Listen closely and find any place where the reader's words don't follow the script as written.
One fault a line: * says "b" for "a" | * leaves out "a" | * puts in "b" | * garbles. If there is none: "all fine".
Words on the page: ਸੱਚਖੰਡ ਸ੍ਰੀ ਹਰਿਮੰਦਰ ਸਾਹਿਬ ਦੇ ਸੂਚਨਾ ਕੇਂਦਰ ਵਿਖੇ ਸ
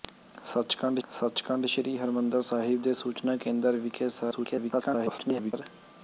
* puts in "ਸੱਚਖੰਡ"
* garbles